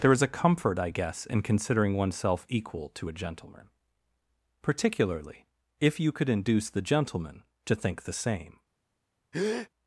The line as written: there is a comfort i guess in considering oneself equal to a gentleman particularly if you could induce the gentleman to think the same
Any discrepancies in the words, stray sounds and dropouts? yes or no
yes